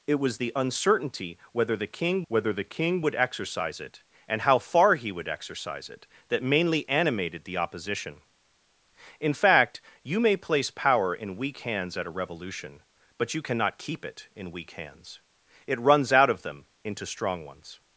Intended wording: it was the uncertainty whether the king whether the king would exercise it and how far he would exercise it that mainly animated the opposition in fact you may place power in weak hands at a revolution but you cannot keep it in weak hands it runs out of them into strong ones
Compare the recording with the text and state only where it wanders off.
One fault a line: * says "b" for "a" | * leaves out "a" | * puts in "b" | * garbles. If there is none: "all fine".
all fine